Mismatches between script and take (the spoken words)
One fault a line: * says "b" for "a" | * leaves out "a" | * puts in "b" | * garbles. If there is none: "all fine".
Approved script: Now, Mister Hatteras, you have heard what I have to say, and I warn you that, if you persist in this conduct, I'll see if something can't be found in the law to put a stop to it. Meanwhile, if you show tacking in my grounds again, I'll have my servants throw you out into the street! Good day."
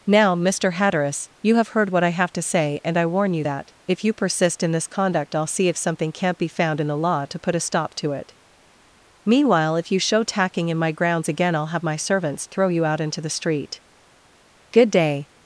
all fine